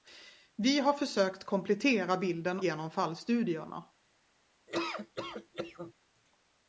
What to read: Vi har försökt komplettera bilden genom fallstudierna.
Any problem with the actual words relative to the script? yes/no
no